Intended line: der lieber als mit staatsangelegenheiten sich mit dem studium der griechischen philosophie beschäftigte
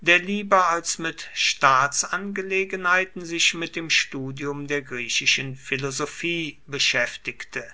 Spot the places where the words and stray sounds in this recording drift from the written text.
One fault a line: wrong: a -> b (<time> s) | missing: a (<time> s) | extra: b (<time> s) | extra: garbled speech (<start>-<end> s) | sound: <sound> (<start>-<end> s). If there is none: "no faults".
no faults